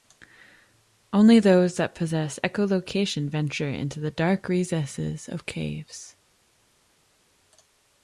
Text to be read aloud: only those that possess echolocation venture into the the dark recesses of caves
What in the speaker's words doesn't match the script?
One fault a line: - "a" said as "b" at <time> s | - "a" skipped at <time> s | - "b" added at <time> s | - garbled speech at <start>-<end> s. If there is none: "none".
- "the" skipped at 4.1 s